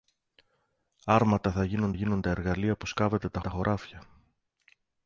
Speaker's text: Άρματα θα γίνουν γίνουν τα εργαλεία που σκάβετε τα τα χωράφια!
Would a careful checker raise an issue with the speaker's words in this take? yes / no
no